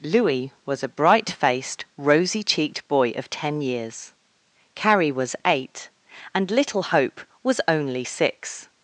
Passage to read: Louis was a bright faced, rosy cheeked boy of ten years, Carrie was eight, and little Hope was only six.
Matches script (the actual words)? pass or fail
pass